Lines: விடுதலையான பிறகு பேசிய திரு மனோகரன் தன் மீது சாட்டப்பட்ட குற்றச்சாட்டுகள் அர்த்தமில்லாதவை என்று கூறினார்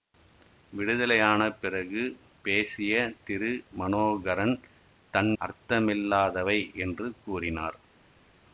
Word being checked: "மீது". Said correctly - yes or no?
no